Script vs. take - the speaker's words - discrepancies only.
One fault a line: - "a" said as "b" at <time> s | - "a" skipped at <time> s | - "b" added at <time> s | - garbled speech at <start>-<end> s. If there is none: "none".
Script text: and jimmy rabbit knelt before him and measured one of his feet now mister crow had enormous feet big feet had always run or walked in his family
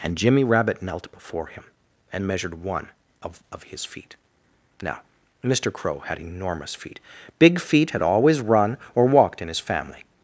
- "of" added at 3.5 s